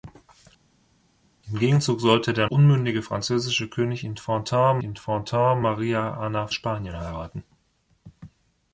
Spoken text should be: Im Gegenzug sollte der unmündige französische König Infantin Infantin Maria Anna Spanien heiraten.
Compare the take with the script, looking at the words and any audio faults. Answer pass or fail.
pass